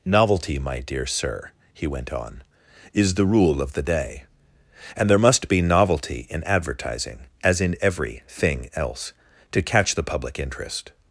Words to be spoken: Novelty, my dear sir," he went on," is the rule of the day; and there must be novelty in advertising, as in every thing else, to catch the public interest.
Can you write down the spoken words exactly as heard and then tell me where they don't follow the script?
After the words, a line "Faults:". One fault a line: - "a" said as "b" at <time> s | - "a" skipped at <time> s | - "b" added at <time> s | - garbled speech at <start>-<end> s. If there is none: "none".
Novelty, my dear sir," he went on," is the rule of the day; and there must be novelty in advertising, as in every thing else, to catch the public interest.
Faults:
none